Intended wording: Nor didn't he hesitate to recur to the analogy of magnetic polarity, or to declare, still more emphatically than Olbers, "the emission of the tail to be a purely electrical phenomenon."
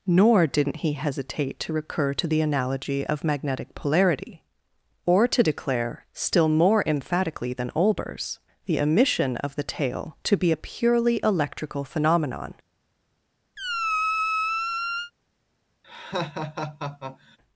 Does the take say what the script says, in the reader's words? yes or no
yes